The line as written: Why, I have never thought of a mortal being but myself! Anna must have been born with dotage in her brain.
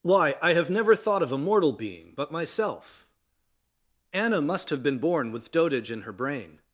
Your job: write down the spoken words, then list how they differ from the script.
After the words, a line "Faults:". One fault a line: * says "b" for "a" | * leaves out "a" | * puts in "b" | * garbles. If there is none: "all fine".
Why, I have never thought of a mortal being but myself! Anna must have been born with dotage in her brain.
Faults:
all fine